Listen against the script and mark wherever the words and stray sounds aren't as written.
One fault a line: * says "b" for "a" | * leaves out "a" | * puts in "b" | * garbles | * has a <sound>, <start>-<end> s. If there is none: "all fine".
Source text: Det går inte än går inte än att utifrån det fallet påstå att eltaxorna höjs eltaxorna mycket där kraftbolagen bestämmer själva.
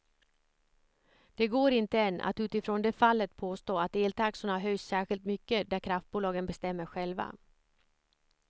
* leaves out "går inte än"
* says "särskilt" for "eltaxorna"